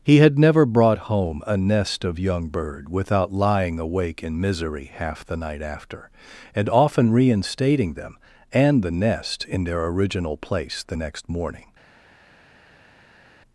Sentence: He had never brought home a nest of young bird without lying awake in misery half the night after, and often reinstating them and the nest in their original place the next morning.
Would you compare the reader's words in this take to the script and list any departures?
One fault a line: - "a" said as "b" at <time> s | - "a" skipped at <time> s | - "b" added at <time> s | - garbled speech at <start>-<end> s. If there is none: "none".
none